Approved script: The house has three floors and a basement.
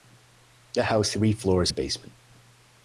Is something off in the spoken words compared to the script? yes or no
yes